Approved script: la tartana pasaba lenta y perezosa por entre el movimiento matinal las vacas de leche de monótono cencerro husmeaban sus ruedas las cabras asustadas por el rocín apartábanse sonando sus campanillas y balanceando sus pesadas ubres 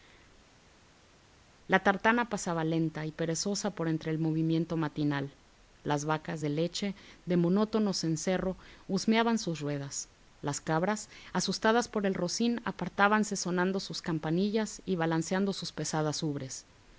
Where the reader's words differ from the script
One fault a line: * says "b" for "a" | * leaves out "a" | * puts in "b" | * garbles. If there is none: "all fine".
all fine